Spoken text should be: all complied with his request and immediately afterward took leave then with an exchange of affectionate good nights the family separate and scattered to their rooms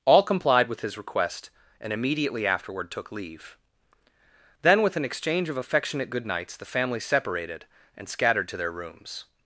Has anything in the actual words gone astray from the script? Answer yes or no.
yes